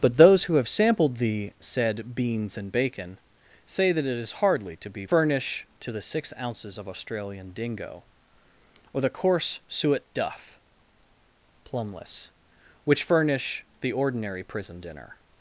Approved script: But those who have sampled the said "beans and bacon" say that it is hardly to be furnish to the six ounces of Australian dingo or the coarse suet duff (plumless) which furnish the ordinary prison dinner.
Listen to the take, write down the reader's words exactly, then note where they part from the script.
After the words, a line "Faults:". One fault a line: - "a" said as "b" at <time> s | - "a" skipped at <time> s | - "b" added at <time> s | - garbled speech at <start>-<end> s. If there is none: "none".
But those who have sampled the said "beans and bacon" say that it is hardly to be furnish to the six ounces of Australian dingo or the coarse suet duff (plumless) which furnish the ordinary prison dinner.
Faults:
none